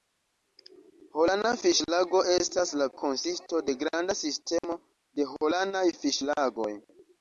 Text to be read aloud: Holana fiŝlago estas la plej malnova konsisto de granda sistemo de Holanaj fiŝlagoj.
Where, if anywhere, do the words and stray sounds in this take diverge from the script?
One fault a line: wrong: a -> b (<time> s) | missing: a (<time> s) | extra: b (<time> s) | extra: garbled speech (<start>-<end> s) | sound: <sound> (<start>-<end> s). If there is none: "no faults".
missing: plej malnova (2.9 s)
sound: dropout (4.6-4.6 s)